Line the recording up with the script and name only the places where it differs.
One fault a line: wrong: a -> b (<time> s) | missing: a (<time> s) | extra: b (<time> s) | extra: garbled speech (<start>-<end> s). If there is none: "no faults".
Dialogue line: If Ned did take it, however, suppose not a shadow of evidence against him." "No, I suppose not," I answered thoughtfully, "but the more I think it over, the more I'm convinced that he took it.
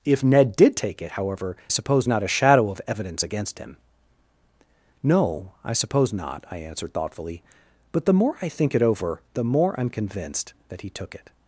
no faults